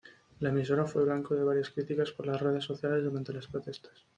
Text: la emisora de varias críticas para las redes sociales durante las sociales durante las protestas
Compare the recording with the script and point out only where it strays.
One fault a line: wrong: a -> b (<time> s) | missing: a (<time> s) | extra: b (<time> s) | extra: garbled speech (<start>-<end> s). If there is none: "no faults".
extra: fue blanco (0.8 s)
wrong: para -> por (2.1 s)
missing: sociales durante las (3.5 s)